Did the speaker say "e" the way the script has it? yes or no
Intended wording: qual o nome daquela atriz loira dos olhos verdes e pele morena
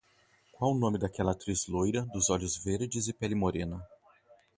yes